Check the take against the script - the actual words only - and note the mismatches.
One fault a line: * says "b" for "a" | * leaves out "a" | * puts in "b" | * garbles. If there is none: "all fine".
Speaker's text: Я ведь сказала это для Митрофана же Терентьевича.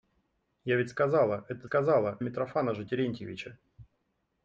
* says "сказала" for "для"